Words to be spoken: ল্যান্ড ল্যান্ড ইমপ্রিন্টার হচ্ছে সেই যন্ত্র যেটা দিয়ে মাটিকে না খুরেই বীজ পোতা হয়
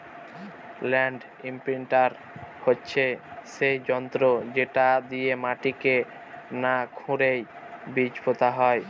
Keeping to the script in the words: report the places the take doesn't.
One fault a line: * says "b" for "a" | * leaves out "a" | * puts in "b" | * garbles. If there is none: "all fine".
* leaves out "ল্যান্ড"